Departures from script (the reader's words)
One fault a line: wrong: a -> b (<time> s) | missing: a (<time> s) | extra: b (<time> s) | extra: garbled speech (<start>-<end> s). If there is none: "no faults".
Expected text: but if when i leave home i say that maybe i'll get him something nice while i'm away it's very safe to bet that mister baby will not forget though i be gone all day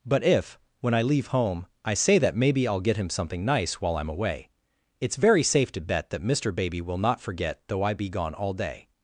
no faults